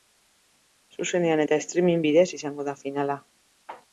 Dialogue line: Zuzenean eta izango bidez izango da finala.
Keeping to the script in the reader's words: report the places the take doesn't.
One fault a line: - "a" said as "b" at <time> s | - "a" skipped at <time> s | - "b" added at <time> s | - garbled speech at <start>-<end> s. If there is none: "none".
- "izango" said as "streaming" at 1.6 s